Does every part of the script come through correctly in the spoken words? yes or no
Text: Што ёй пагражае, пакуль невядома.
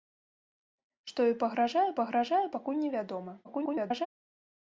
no